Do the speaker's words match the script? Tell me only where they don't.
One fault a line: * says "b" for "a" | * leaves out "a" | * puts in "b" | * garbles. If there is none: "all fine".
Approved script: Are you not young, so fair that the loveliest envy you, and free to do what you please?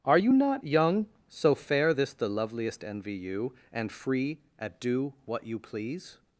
* says "this" for "that"
* says "at" for "to"